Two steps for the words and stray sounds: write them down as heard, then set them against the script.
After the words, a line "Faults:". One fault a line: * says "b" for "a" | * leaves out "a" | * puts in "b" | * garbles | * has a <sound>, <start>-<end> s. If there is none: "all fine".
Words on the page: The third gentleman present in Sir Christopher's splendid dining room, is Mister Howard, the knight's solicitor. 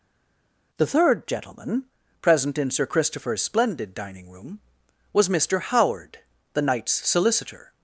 The third gentleman present in Sir Christopher's splendid dining room, was Mister Howard, the knight's solicitor.
Faults:
* says "was" for "is"